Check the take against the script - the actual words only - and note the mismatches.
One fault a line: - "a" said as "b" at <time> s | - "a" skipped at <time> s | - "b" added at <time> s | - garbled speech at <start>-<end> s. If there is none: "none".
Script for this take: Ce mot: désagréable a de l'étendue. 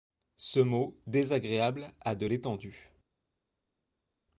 none